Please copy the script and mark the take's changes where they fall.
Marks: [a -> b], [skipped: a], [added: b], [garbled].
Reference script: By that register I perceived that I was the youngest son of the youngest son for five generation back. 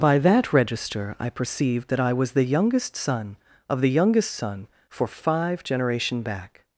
By that register I perceived that I was the youngest son of the youngest son for five generation back.